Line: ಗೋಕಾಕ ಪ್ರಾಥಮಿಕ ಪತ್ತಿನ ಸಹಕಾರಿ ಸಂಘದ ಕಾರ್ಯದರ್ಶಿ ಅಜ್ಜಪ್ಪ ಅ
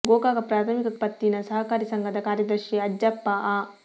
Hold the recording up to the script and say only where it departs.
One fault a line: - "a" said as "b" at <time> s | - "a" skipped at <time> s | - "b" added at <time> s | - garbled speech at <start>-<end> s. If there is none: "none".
none